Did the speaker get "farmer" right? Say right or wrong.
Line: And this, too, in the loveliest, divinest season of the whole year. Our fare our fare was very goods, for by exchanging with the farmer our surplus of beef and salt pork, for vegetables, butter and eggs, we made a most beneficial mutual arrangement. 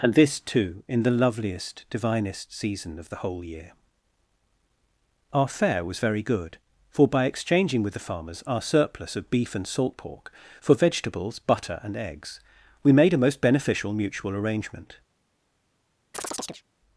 wrong